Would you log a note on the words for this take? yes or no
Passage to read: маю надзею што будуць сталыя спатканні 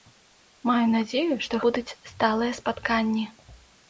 no